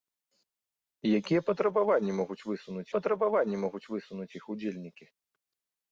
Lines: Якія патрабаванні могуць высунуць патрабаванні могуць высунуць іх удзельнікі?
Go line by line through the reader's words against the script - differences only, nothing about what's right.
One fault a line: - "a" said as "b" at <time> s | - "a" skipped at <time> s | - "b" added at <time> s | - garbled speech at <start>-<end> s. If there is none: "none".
none